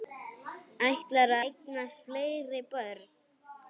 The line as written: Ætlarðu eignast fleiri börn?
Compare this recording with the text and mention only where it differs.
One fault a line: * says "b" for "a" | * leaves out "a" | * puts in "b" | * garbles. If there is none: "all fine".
all fine